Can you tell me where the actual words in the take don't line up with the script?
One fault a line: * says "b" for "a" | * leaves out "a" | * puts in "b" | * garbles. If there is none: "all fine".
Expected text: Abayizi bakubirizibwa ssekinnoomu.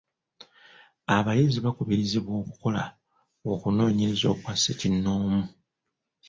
* puts in "okukola okunoonyereza okwa"